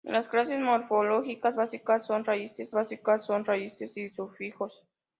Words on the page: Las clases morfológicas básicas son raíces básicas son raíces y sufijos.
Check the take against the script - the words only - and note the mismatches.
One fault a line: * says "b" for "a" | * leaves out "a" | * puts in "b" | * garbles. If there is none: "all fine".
all fine